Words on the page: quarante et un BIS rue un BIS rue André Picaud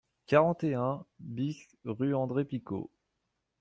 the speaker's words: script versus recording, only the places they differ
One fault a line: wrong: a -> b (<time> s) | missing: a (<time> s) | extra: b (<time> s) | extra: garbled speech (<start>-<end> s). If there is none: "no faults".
missing: un BIS rue (2.1 s)